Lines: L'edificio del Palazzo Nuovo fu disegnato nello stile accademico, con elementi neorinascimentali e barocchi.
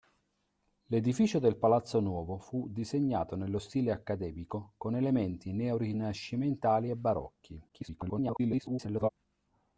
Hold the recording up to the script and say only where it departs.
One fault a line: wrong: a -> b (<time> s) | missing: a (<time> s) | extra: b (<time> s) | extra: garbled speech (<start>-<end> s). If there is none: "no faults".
extra: garbled speech (7.7-9.1 s)